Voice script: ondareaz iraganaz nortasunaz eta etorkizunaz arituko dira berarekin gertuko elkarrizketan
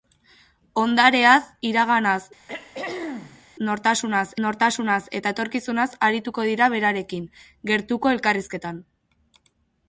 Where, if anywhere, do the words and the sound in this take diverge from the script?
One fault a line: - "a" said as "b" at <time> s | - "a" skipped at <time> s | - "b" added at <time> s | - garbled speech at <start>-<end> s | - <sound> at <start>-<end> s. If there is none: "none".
- throat clearing at 2.5-3.5 s
- "nortasunaz" added at 4.5 s